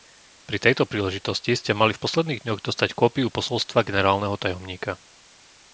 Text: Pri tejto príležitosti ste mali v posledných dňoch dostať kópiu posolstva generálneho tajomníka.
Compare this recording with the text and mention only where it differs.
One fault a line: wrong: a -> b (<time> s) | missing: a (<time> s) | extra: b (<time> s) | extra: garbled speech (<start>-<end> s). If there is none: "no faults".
no faults